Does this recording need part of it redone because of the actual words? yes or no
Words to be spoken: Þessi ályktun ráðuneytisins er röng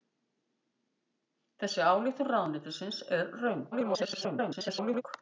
yes